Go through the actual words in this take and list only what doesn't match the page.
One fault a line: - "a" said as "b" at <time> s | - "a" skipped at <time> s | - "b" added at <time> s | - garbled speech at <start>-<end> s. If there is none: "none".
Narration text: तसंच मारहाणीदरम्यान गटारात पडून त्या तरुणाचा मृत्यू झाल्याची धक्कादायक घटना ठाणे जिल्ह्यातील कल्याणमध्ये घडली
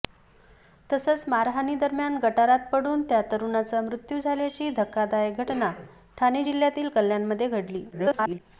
- garbled speech at 7.9-8.4 s